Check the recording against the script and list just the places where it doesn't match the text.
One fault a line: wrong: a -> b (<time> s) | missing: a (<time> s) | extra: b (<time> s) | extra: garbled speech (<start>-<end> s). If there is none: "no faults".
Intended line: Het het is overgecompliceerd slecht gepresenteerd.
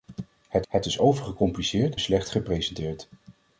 no faults